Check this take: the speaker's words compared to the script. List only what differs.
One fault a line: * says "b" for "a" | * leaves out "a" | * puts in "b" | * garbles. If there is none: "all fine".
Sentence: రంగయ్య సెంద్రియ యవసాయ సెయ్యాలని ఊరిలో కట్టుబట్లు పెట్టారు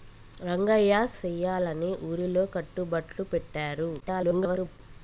* leaves out "సెంద్రియ యవసాయ"
* garbles